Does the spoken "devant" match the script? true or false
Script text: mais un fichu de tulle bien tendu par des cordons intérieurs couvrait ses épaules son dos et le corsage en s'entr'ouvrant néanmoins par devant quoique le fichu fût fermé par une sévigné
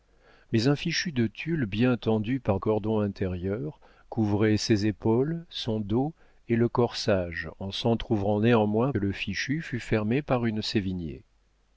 false